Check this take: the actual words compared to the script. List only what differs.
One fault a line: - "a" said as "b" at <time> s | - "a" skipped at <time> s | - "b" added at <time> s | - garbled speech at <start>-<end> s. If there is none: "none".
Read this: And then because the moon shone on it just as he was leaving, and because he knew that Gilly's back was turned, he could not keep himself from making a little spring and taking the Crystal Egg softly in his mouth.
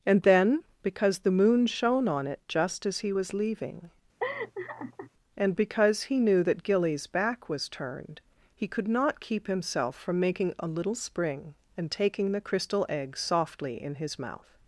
none